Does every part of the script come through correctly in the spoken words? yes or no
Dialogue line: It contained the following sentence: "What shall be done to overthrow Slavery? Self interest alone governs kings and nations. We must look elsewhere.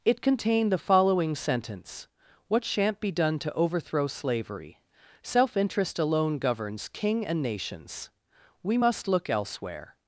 no